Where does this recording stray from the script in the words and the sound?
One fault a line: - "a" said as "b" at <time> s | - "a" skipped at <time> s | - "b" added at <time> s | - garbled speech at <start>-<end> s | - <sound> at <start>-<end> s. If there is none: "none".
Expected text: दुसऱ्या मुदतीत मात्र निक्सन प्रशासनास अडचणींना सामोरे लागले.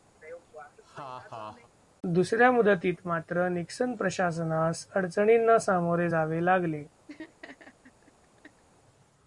- laugh at 0.2-1.7 s
- "जावे" added at 6.1 s
- laugh at 7.1-8.6 s